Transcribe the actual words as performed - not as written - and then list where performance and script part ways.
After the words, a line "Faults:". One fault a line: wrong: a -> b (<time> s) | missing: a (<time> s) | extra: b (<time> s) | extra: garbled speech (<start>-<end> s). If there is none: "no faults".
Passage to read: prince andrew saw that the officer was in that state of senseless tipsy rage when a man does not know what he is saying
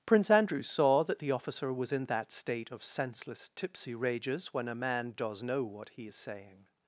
prince andrew saw that the officer was in that state of senseless tipsy rages when a man does know what he is saying
Faults:
wrong: rage -> rages (4.0 s)
missing: not (5.4 s)